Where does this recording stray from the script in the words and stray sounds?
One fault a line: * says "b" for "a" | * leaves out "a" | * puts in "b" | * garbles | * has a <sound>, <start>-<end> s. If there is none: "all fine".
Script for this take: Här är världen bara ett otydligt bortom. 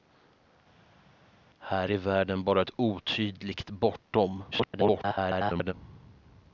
* garbles